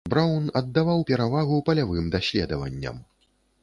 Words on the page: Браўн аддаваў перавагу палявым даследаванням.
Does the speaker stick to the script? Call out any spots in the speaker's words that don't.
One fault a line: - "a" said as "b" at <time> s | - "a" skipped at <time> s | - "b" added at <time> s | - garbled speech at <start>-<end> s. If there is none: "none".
none